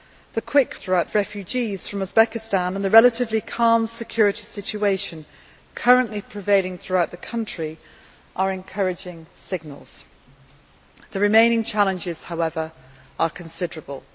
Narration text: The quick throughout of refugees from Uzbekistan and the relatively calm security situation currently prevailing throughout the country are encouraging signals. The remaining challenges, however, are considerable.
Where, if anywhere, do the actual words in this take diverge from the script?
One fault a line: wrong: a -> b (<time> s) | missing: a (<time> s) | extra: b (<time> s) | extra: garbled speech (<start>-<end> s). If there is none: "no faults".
no faults